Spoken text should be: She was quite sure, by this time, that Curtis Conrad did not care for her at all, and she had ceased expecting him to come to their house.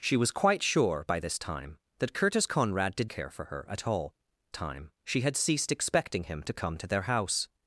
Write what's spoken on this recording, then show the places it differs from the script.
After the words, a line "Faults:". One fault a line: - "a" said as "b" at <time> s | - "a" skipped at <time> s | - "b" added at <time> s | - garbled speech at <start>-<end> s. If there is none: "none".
She was quite sure, by this time, that Curtis Conrad did care for her at all, time she had ceased expecting him to come to their house.
Faults:
- "not" skipped at 3.1 s
- "and" said as "time" at 4.5 s